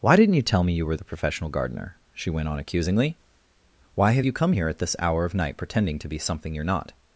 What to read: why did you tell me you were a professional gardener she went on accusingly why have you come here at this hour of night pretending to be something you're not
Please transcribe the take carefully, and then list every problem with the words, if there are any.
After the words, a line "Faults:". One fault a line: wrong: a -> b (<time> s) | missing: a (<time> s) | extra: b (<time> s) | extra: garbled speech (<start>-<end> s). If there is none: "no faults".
why didn't you tell me you were the professional gardener she went on accusingly why have you come here at this hour of night pretending to be something you're not
Faults:
wrong: did -> didn't (0.1 s)
wrong: a -> the (1.0 s)